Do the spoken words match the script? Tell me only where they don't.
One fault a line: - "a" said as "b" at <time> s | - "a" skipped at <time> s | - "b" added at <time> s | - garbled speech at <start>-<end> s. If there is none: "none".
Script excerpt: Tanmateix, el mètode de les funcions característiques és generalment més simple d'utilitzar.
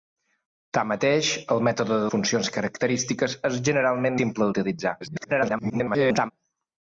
- "les" skipped at 2.1 s
- "més" skipped at 4.2 s
- garbled speech at 5.0-6.3 s